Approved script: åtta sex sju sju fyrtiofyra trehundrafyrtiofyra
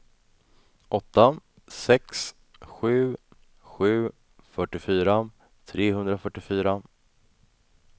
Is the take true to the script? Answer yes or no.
yes